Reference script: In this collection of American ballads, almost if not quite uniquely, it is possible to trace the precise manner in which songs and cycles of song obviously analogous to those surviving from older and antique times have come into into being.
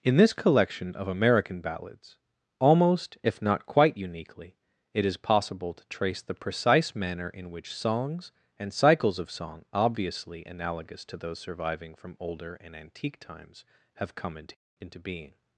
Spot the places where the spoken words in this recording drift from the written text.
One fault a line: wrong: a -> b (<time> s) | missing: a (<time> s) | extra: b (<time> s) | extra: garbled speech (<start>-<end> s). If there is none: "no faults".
no faults